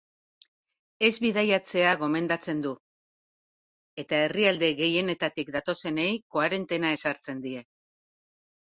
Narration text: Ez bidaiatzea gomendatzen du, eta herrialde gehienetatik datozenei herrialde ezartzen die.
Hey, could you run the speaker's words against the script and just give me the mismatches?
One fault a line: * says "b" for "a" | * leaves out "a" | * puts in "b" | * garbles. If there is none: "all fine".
* says "koarentena" for "herrialde"